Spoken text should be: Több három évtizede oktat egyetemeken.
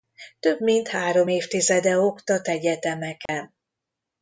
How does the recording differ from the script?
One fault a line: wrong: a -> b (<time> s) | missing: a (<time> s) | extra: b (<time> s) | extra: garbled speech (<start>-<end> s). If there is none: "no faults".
extra: mint (0.6 s)